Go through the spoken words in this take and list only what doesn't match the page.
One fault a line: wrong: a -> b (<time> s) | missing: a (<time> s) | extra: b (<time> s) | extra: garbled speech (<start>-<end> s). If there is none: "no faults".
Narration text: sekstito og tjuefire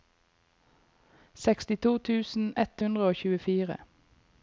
extra: tusen ett hundre (2.1 s)